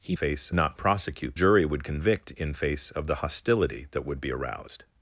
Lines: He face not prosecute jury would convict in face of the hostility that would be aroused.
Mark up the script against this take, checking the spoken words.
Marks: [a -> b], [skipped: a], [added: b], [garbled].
He face not prosecute jury would convict in face of the hostility that would be aroused.